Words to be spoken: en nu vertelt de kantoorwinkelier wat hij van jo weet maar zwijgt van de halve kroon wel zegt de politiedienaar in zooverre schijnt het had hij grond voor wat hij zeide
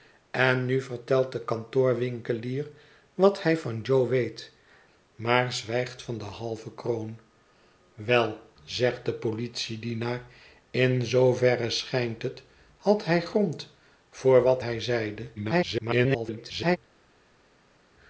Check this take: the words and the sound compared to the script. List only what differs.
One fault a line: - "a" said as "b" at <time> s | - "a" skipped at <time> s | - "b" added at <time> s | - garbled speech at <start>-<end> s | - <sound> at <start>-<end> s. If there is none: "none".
- garbled speech at 15.4-16.8 s